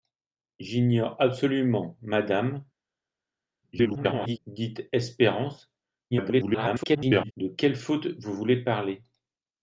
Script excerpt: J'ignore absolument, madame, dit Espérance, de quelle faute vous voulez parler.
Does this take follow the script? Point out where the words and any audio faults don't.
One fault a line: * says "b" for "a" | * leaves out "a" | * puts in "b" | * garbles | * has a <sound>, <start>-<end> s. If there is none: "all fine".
* garbles
* garbles